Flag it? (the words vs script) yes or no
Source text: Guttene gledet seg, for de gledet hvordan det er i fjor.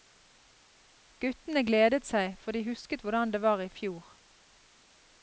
yes